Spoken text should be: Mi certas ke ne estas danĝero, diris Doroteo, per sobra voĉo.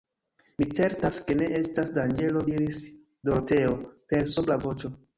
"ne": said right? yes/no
yes